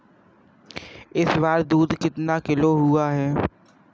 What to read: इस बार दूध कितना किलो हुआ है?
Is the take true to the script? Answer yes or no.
yes